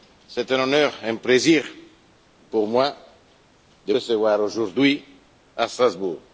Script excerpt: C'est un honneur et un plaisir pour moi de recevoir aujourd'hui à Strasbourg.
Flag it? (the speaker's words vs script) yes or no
no